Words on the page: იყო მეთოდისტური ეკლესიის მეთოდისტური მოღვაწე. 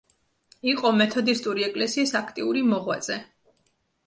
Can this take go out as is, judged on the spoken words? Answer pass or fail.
fail